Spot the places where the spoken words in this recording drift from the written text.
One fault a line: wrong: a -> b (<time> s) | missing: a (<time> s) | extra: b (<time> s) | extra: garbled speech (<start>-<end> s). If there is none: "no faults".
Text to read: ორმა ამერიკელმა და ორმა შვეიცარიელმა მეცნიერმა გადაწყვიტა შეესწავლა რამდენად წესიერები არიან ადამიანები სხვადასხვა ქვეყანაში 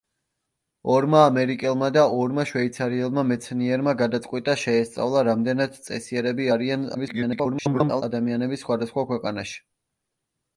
extra: garbled speech (6.9-8.0 s)